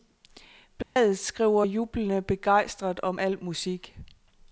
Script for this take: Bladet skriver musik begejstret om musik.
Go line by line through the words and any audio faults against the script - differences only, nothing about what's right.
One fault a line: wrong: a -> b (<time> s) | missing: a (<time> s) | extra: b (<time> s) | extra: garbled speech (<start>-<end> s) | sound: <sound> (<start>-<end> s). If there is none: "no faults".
sound: dropout (0.8-1.0 s)
wrong: musik -> jublende (1.6 s)
extra: al (3.2 s)